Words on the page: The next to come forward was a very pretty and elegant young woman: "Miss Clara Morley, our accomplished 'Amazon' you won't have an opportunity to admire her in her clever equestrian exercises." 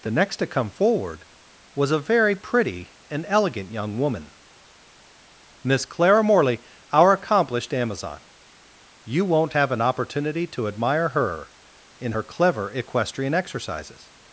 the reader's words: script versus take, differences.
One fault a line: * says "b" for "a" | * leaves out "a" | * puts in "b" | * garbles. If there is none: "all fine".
all fine